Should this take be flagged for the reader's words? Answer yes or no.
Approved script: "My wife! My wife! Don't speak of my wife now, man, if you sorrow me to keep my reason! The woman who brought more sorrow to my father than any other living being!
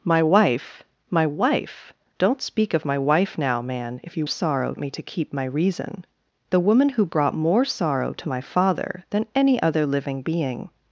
no